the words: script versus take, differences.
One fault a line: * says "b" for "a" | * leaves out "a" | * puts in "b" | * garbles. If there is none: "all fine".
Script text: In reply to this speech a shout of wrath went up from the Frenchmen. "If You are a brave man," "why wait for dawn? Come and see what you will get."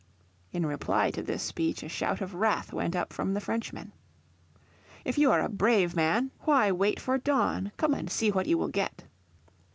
all fine